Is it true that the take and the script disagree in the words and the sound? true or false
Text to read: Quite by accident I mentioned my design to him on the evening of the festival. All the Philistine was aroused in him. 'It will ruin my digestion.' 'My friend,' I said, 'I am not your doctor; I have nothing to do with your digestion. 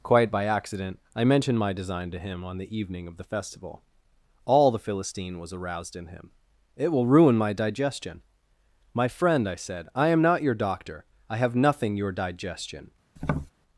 true